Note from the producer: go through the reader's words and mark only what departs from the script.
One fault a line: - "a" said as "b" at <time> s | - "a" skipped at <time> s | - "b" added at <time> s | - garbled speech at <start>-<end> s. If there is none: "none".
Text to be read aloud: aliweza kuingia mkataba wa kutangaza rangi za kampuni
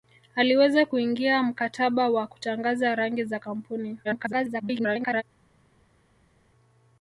- garbled speech at 4.0-5.2 s